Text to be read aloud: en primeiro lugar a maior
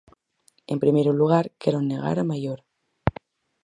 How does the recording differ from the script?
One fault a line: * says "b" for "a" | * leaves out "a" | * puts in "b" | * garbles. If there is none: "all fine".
* puts in "quero negar"